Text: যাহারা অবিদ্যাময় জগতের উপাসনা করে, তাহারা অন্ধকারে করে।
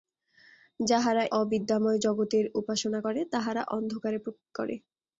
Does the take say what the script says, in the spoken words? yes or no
yes